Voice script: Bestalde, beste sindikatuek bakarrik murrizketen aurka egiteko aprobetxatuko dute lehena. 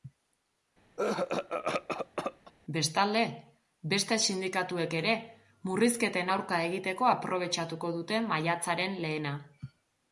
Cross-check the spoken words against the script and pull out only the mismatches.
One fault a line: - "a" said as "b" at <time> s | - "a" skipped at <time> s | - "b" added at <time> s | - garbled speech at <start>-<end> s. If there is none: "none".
- "bakarrik" said as "ere" at 5.0 s
- "maiatzaren" added at 8.3 s